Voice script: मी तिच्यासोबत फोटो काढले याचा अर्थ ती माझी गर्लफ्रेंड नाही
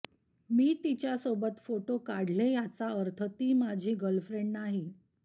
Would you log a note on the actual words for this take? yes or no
no